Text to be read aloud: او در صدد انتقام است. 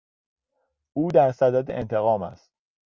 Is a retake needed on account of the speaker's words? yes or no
no